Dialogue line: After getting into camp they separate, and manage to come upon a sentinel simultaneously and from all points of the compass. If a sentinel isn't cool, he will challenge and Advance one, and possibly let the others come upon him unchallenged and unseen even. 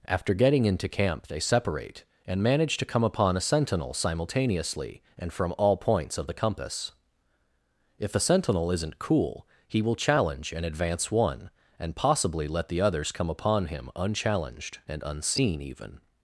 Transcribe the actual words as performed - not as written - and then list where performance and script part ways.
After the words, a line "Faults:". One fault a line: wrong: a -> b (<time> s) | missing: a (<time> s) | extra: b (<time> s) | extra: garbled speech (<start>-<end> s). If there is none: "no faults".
After getting into camp they separate, and manage to come upon a sentinel simultaneously and from all points of the compass. If a sentinel isn't cool, he will challenge and Advance one, and possibly let the others come upon him unchallenged and unseen even.
Faults:
no faults